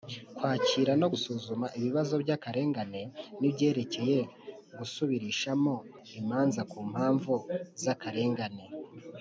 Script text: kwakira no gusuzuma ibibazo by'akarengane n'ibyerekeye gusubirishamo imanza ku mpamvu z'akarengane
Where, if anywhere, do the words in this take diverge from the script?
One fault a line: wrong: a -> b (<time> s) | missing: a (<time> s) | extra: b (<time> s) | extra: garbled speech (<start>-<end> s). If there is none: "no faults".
no faults